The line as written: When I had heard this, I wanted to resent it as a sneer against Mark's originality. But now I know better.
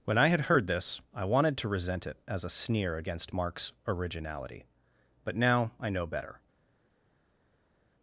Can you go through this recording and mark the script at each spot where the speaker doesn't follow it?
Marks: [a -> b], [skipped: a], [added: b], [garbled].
When I had heard this, I wanted to resent it as a sneer against Mark's originality. But now I know better.